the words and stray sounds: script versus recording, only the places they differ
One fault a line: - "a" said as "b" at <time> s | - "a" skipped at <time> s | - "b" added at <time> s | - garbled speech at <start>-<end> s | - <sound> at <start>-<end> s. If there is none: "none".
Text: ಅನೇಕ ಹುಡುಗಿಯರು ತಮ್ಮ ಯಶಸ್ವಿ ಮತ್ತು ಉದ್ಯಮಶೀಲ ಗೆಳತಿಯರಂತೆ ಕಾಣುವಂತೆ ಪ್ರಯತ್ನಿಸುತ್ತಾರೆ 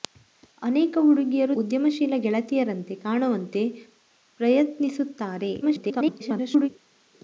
- "ತಮ್ಮ ಯಶಸ್ವಿ ಮತ್ತು" skipped at 1.6 s
- garbled speech at 5.6-6.7 s